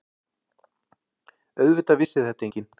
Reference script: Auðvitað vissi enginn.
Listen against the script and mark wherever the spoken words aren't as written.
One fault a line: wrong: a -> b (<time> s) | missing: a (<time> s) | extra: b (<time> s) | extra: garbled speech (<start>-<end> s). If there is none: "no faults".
extra: þetta (2.3 s)